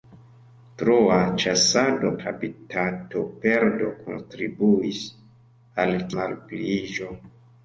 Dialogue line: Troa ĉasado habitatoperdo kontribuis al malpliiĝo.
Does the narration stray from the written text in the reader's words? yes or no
no